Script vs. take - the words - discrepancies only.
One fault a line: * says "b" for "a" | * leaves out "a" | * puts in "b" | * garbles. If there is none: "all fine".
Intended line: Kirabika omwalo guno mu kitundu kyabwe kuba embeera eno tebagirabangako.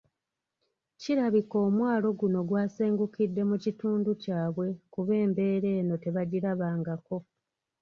* puts in "gwasengukidde"